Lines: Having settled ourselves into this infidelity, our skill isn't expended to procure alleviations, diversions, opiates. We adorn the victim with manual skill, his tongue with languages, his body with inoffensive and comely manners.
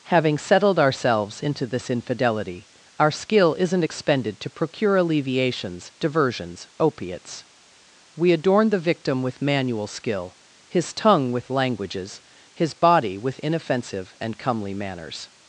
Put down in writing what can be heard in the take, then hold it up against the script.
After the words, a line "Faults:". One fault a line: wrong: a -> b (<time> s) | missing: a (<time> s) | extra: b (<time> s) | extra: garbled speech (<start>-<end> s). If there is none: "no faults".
Having settled ourselves into this infidelity, our skill isn't expended to procure alleviations, diversions, opiates. We adorn the victim with manual skill, his tongue with languages, his body with inoffensive and comely manners.
Faults:
no faults